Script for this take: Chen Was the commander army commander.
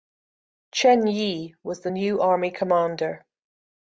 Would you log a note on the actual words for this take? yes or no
yes